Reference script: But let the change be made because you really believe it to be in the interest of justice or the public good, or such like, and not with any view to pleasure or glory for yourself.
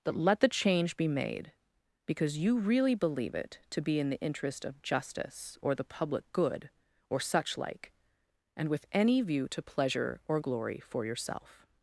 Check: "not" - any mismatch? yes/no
yes